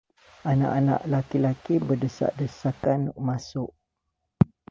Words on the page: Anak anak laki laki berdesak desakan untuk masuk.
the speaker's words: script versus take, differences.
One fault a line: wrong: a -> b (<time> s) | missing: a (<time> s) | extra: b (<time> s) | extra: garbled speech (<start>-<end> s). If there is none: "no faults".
missing: untuk (3.1 s)